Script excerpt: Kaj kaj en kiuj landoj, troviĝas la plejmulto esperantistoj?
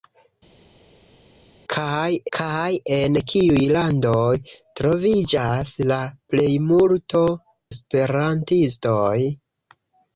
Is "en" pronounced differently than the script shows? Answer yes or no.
no